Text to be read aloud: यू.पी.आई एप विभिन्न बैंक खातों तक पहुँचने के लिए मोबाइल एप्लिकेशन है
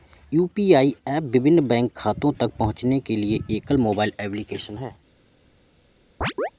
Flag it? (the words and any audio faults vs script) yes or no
yes